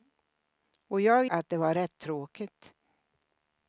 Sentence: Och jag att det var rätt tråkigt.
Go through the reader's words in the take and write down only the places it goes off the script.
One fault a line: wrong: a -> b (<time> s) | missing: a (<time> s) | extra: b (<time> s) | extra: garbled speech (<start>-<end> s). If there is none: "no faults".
no faults